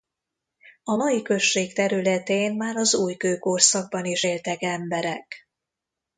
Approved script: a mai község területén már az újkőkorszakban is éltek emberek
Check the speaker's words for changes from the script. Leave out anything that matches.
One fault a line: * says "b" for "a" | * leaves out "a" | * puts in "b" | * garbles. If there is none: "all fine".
all fine